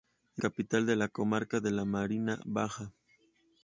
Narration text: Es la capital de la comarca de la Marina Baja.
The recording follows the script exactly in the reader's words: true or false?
false